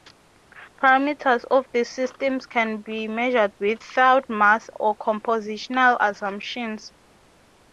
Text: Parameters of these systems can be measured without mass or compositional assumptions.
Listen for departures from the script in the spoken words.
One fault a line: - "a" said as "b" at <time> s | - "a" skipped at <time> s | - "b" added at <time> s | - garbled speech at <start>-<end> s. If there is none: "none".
none